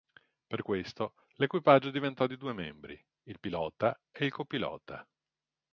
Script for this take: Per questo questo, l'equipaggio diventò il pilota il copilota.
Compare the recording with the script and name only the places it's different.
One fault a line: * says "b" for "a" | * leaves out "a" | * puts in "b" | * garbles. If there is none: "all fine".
* leaves out "questo"
* puts in "di due membri"
* puts in "e"